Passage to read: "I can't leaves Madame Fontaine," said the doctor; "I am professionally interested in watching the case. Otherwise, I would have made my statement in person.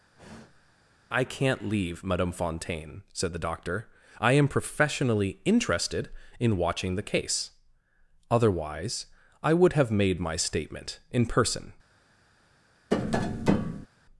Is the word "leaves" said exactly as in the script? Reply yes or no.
no